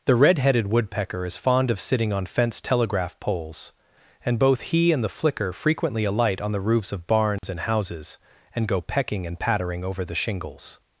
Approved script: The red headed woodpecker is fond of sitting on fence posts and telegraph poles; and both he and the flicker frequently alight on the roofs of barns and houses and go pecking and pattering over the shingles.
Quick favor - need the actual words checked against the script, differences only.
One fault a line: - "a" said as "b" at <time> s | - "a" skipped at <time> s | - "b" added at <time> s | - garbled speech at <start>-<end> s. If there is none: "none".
- "posts and" skipped at 2.6 s